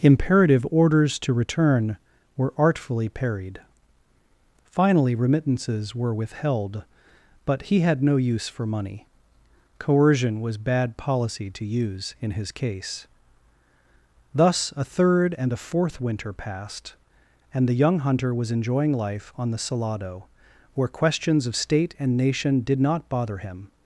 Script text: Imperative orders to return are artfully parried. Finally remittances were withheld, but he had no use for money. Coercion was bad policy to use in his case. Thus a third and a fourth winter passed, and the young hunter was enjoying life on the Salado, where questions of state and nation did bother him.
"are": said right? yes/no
no